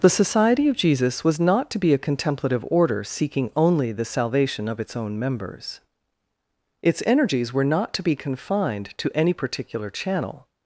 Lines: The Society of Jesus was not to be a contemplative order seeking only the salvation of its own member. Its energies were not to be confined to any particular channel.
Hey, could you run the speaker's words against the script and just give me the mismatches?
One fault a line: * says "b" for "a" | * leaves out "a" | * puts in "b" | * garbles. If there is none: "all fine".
* says "members" for "member"